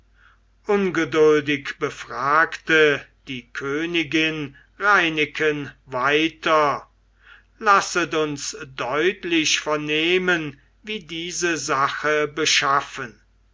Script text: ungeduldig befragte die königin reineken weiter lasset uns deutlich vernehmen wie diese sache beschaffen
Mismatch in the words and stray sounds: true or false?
false